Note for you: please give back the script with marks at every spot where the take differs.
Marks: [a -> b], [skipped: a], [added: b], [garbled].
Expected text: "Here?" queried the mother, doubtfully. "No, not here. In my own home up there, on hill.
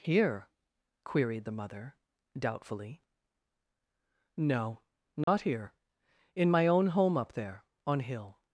"Here?" queried the mother, doubtfully. "No, not here. In my own home up there, on hill.